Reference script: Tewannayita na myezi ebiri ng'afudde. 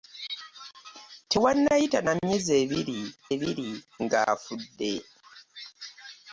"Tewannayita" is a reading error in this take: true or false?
false